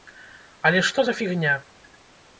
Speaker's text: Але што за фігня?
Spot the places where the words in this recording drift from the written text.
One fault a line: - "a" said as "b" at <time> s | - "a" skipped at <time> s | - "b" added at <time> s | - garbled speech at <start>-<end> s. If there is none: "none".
none